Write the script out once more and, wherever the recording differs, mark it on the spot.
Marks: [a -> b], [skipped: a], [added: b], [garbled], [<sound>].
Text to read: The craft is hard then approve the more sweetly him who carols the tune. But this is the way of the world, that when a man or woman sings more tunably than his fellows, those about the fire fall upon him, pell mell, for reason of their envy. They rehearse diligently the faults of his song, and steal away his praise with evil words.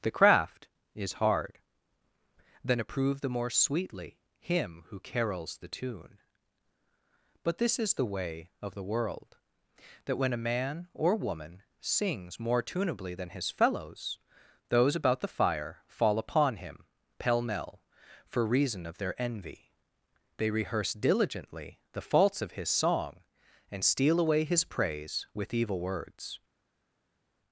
The craft is hard then approve the more sweetly him who carols the tune. But this is the way of the world, that when a man or woman sings more tunably than his fellows, those about the fire fall upon him, pell mell, for reason of their envy. They rehearse diligently the faults of his song, and steal away his praise with evil words.